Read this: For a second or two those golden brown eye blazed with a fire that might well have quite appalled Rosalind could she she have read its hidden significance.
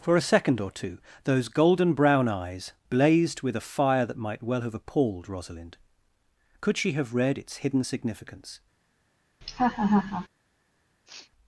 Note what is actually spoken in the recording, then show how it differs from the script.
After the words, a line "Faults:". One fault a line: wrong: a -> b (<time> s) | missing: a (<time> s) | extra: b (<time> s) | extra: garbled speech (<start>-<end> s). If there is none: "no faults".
For a second or two those golden brown eyes blazed with a fire that might well have appalled Rosalind could she have read its hidden significance.
Faults:
wrong: eye -> eyes (2.3 s)
missing: quite (4.7 s)
missing: she (6.9 s)